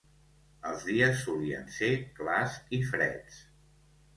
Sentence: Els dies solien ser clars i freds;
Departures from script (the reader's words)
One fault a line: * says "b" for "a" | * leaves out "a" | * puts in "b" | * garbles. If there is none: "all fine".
all fine